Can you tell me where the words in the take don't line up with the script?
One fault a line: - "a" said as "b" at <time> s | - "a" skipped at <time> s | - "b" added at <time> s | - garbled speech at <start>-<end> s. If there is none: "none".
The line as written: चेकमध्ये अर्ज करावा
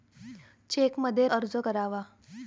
none